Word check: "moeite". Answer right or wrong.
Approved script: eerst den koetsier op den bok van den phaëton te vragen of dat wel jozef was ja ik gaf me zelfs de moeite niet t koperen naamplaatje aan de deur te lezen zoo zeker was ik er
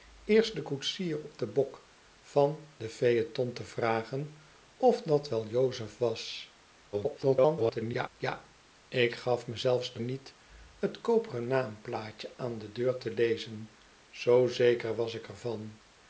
wrong